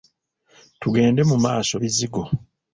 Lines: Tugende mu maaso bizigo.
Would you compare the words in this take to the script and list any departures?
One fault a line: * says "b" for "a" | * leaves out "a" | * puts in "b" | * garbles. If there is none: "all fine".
all fine